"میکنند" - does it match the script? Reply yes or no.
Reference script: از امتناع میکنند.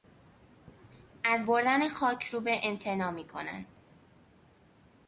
yes